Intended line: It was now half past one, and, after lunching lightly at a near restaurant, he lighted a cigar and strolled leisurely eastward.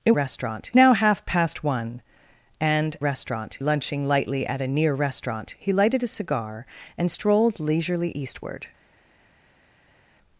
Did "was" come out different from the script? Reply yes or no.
yes